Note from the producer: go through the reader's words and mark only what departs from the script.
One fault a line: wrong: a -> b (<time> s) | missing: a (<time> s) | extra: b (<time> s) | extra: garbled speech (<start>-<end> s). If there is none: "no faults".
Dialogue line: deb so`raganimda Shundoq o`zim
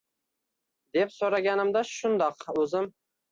no faults